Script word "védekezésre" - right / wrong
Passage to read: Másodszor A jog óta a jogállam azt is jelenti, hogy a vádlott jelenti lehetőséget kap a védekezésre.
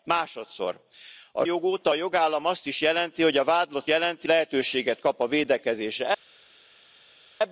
right